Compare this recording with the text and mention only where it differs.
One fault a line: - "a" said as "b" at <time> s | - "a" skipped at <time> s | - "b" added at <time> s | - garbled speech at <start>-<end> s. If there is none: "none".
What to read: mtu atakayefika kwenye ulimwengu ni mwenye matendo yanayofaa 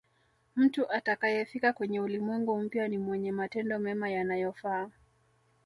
- "mpya" added at 2.6 s
- "mema" added at 3.8 s